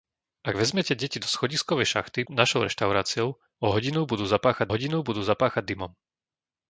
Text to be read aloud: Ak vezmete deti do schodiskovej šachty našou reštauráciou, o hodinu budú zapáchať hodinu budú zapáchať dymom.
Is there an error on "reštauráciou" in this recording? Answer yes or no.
no